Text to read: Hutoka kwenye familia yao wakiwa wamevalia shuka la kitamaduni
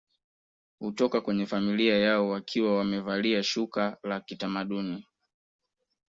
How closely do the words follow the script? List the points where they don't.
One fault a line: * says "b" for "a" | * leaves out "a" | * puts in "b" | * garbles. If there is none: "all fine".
all fine